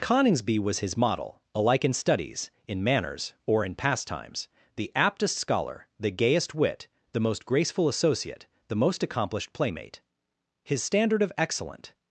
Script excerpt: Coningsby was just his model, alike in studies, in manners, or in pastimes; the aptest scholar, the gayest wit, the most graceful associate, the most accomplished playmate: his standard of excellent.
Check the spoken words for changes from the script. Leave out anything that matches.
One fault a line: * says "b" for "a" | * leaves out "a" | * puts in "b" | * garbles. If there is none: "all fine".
* leaves out "just"